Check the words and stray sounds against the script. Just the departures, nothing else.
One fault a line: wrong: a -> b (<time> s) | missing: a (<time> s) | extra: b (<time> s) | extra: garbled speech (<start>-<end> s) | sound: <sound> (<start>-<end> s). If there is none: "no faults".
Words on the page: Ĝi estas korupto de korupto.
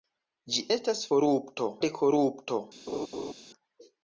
sound: laugh (2.9-3.3 s)